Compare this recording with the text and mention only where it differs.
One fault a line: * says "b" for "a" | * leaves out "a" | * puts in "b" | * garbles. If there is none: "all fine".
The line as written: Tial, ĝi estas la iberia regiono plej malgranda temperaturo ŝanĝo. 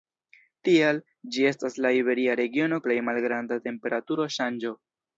all fine